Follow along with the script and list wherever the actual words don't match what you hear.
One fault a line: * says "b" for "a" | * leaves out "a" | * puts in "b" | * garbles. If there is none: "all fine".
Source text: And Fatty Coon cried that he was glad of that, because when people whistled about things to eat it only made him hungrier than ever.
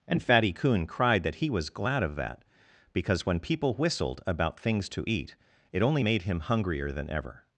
all fine